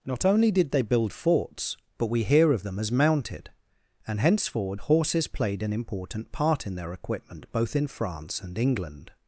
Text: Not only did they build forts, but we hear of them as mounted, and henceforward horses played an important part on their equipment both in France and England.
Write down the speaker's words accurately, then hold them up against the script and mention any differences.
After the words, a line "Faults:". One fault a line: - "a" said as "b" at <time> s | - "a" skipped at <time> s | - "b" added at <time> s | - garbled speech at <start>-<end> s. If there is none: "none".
Not only did they build forts, but we hear of them as mounted, and henceforward horses played an important part in their equipment both in France and England.
Faults:
- "on" said as "in" at 6.6 s